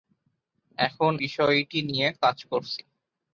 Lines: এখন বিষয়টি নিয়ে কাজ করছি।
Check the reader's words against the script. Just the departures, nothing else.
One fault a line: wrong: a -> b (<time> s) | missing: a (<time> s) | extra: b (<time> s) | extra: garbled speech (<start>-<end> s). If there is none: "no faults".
no faults